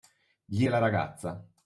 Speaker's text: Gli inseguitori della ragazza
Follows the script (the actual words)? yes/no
no